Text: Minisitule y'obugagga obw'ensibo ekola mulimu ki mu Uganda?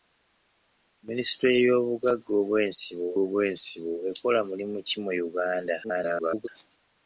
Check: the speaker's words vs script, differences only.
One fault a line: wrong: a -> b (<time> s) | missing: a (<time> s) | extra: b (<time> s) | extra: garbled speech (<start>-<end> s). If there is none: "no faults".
extra: obw'ensibo (3.2 s)
extra: garbled speech (5.8-6.5 s)